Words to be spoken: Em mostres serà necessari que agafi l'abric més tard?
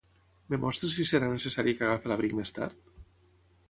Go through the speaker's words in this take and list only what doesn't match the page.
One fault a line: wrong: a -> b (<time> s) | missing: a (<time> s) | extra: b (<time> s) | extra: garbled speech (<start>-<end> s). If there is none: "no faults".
extra: si (0.9 s)